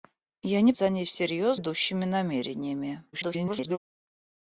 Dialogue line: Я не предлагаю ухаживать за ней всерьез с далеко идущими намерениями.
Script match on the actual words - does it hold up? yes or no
no